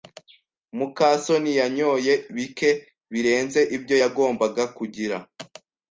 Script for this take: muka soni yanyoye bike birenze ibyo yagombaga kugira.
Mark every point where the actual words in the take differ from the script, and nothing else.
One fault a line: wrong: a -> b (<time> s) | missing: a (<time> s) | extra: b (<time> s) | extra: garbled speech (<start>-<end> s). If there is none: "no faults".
no faults